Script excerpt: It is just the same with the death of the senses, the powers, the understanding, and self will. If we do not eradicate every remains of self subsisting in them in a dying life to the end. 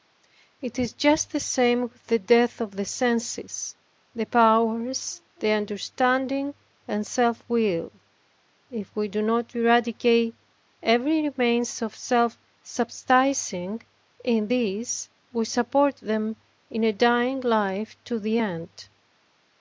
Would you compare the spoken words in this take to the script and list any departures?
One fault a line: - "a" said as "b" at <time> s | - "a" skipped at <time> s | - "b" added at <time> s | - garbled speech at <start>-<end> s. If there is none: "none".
- "these we support" added at 14.4 s